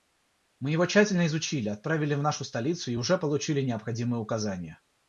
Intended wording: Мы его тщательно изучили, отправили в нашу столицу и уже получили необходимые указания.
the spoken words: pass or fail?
pass